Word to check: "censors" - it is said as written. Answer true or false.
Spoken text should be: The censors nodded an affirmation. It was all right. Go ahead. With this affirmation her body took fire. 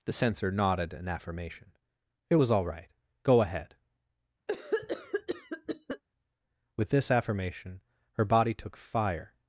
false